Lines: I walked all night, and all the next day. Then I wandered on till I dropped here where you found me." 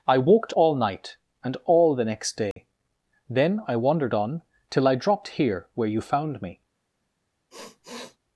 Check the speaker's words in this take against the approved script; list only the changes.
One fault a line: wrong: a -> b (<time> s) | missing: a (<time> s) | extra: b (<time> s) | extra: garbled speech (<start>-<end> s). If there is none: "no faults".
no faults